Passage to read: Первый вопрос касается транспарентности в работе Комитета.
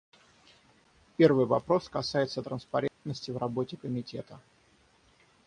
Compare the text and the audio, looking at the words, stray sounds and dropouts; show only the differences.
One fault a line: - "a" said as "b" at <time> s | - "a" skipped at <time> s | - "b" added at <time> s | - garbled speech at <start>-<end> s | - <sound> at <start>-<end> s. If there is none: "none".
- dropout at 2.9-3.0 s